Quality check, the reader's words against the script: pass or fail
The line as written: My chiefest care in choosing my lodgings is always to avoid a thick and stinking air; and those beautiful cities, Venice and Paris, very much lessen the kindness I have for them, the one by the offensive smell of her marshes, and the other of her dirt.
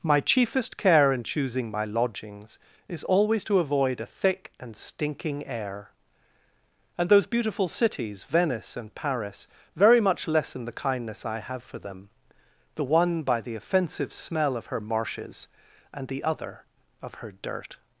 pass